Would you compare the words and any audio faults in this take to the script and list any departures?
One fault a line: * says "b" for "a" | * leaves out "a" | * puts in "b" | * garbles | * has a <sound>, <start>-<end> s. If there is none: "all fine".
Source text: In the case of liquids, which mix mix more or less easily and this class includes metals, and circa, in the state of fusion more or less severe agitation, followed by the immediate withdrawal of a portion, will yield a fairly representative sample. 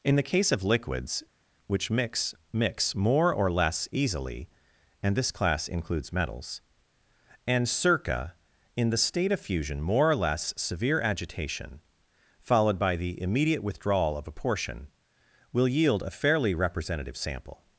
all fine